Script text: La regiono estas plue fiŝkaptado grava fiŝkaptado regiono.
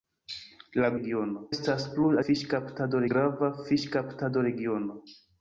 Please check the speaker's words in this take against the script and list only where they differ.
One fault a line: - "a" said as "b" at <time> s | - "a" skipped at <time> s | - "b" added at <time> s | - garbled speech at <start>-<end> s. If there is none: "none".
none